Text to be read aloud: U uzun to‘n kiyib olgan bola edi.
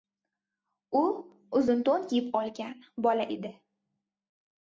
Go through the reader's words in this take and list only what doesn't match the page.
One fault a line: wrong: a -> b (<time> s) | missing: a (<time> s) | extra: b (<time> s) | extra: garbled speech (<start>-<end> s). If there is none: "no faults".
no faults